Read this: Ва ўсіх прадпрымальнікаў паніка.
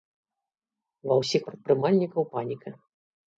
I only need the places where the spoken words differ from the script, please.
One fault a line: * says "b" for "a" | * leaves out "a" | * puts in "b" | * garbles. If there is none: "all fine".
all fine